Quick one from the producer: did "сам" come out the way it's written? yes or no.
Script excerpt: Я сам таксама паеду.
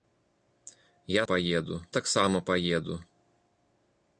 no